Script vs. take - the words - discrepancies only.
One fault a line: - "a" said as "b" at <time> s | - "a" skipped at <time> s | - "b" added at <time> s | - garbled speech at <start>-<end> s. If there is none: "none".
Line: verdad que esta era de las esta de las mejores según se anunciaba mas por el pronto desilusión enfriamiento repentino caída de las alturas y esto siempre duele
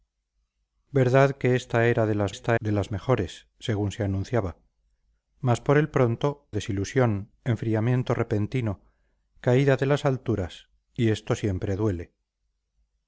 none